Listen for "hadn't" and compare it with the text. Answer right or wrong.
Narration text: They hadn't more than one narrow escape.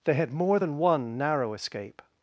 wrong